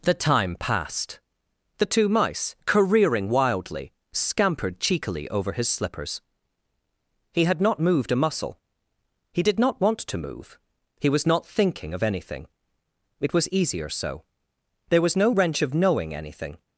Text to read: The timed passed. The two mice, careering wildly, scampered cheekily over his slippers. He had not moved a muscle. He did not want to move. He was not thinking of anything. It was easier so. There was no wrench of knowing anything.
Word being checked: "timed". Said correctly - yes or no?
no